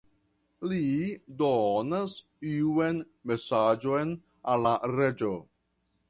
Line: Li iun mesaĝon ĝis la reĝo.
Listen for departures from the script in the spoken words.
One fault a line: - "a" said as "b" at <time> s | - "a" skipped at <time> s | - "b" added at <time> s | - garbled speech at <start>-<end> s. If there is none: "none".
- "donas" added at 1.4 s
- "ĝis" said as "al" at 4.5 s